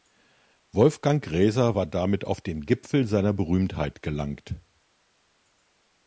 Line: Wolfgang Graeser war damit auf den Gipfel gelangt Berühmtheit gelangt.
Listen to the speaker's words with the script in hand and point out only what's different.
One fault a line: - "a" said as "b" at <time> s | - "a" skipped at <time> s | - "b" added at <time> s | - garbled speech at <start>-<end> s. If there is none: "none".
- "gelangt" said as "seiner" at 3.1 s